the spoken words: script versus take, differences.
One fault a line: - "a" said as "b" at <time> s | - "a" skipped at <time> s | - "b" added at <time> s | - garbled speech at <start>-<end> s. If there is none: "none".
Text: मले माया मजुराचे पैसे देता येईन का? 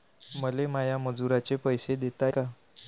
- "येईन" skipped at 2.3 s